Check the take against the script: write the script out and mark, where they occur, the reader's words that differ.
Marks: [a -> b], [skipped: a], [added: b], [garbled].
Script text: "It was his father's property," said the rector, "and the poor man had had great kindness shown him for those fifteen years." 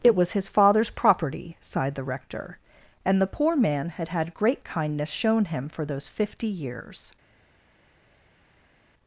"It was his father's property," [said -> sighed] the rector, "and the poor man had had great kindness shown him for those [fifteen -> fifty] years."